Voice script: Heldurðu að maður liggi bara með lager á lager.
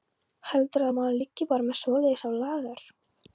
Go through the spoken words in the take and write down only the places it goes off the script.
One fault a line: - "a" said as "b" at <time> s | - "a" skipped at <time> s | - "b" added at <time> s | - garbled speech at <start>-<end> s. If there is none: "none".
- "lager" said as "svoleiðis" at 1.8 s